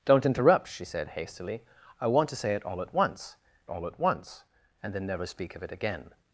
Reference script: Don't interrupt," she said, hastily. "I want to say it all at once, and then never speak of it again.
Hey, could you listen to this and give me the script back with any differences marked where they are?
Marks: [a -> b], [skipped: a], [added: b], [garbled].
Don't interrupt," she said, hastily. "I want to say it all at once, [added: all at once] and then never speak of it again.